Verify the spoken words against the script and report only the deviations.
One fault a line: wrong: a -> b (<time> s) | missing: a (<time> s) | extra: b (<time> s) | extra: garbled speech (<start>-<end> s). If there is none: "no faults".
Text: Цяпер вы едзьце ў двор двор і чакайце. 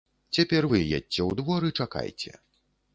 missing: двор (1.6 s)